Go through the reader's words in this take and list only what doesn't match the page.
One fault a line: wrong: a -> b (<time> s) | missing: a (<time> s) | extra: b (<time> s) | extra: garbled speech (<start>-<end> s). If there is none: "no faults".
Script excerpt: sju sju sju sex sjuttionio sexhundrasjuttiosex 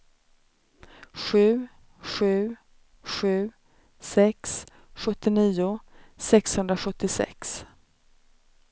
no faults